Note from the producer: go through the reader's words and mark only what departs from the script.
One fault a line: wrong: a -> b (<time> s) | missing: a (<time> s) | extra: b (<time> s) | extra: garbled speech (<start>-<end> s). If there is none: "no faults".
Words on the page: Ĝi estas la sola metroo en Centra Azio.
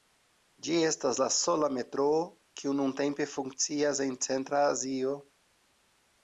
extra: kiu nuntempe funkcias (2.6 s)